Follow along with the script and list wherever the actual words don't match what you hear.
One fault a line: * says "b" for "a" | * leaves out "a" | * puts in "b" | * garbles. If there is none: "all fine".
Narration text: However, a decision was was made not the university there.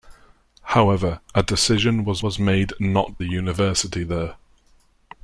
all fine